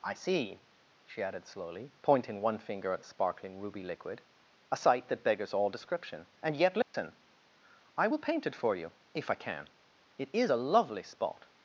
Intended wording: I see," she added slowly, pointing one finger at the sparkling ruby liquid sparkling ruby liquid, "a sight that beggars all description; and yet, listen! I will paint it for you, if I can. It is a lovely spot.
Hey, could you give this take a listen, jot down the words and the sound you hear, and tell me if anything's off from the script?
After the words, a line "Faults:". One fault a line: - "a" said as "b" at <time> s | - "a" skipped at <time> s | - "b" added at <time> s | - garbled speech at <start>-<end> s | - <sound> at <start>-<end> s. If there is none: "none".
I see," she added slowly, pointing one finger at the sparkling ruby liquid, "a sight that beggars all description; and yet, listen! I will paint it for you, if I can. It is a lovely spot.
Faults:
- "sparkling ruby liquid" skipped at 4.2 s
- dropout at 6.8-6.9 s